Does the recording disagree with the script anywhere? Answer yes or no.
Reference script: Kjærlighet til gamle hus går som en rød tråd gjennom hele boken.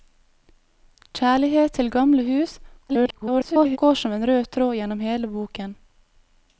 yes